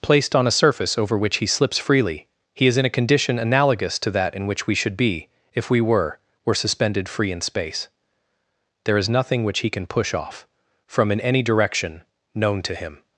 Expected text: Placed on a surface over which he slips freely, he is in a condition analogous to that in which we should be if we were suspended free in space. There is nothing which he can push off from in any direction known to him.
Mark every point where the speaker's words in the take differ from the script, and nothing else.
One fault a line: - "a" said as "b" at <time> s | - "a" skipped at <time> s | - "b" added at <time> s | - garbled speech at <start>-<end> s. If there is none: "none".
- "were" added at 6.4 s